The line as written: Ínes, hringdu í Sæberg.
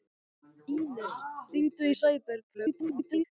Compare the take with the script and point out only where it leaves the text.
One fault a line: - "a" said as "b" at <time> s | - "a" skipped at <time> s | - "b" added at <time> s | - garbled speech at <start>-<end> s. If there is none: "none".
- garbled speech at 2.5-3.2 s